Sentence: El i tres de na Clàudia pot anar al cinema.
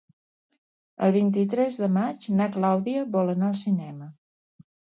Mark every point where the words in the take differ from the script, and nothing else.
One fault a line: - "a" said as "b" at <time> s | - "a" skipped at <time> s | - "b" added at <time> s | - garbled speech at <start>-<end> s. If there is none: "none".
- "vint" added at 1.1 s
- "maig" added at 2.0 s
- "pot" said as "vol" at 3.2 s